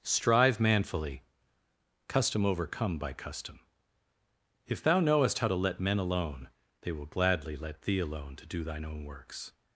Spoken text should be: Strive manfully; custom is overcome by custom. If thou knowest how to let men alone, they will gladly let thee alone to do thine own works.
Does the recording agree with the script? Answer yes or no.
no